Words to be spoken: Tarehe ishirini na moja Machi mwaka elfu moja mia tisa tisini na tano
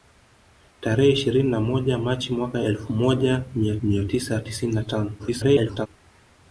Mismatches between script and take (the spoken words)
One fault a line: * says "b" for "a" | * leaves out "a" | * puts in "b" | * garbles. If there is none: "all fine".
* puts in "mia"
* garbles